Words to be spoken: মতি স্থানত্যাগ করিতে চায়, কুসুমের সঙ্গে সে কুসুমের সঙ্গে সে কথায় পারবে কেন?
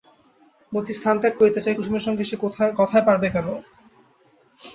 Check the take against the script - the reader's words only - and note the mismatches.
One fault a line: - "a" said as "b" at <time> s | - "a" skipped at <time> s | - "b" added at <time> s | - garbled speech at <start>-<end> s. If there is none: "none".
- "কুসুমের সঙ্গে সে" skipped at 2.4 s